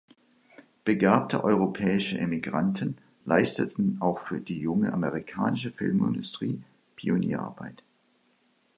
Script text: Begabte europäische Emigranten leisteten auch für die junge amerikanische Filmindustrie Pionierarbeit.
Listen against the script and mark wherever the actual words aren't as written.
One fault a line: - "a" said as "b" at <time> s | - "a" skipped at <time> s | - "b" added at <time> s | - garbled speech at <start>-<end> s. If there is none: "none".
none